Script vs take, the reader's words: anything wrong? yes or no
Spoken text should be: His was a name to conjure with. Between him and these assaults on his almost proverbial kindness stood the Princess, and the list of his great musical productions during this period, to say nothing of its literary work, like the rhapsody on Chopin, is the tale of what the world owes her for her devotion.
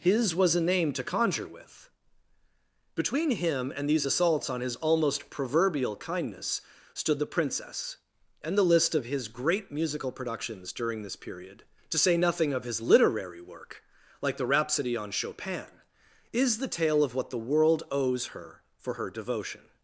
yes